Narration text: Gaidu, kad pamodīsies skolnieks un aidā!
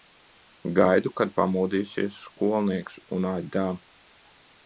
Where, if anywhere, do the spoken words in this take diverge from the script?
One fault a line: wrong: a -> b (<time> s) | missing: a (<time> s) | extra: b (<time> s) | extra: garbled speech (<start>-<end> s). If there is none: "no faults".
no faults